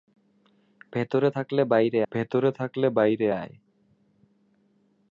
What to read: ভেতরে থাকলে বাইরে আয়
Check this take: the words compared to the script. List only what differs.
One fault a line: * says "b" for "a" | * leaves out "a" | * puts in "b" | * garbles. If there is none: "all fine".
* puts in "ভেতরে থাকলে বাইরে"